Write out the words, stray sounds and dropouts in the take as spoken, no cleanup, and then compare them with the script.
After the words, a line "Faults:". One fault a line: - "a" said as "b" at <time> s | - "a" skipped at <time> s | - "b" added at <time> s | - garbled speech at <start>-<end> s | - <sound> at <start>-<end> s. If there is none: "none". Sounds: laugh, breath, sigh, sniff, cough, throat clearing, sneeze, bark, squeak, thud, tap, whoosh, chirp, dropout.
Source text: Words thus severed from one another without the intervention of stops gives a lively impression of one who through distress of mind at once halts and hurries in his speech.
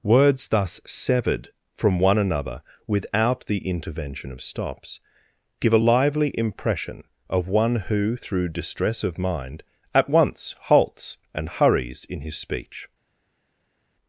Words thus severed from one another without the intervention of stops give a lively impression of one who through distress of mind at once halts and hurries in his speech.
Faults:
- "gives" said as "give" at 5.6 s